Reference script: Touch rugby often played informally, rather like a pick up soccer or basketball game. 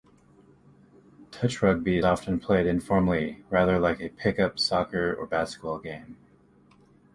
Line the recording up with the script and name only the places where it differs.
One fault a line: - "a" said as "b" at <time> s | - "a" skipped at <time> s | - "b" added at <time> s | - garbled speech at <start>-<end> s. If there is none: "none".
none